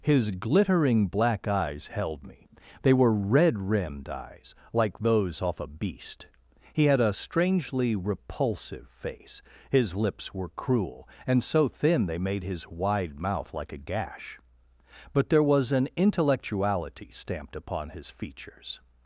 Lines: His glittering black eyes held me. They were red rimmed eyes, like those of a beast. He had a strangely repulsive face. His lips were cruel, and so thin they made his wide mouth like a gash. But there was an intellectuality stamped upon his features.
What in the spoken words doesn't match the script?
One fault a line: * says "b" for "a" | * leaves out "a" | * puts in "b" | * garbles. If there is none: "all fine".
* says "off" for "of"